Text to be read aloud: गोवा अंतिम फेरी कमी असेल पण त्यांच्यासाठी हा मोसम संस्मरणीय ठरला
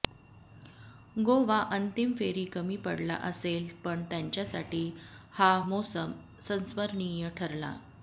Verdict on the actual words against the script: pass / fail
fail